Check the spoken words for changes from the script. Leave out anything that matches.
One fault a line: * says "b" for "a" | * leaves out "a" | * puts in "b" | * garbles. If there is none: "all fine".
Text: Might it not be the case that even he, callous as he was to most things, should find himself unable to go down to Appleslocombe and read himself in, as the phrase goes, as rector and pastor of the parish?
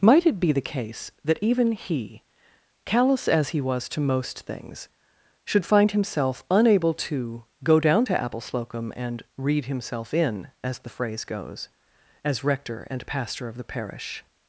* leaves out "not"